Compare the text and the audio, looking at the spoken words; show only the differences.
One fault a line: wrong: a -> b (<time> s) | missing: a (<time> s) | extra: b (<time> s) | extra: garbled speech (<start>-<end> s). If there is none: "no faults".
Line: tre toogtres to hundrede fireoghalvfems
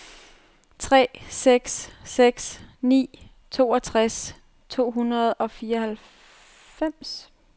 extra: seks seks ni (1.3 s)
extra: og (5.3 s)